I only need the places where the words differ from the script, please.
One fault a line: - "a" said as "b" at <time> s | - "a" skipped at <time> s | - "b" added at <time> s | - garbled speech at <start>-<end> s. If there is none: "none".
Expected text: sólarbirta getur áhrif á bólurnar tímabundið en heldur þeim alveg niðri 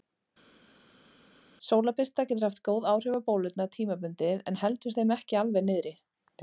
- "haft góð" added at 2.5 s
- "ekki" added at 5.2 s